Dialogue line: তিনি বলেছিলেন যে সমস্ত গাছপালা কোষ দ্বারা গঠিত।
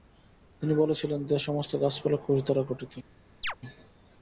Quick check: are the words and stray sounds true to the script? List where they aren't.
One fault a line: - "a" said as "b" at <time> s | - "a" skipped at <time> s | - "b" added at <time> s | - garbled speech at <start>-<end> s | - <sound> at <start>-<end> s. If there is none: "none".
- chirp at 3.4-3.6 s